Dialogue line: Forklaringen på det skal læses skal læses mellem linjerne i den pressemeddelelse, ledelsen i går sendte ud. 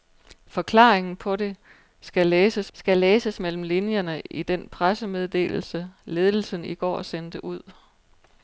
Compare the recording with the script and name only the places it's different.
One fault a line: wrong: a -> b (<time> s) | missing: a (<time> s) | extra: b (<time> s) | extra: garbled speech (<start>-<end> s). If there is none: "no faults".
no faults